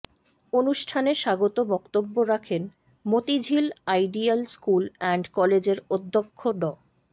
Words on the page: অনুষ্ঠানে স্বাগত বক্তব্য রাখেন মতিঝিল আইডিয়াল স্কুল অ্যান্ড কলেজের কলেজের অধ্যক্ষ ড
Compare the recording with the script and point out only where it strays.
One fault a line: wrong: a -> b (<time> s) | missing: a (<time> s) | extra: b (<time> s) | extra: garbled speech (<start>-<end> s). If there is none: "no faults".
missing: কলেজের (5.8 s)